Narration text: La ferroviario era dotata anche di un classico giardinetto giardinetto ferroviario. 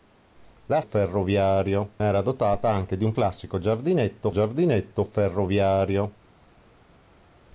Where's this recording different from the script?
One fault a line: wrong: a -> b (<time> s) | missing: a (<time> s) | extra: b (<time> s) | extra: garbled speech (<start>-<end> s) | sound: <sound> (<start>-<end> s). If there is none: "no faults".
no faults